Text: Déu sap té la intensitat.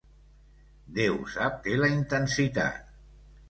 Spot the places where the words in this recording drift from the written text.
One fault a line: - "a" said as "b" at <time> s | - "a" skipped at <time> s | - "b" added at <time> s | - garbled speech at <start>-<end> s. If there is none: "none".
none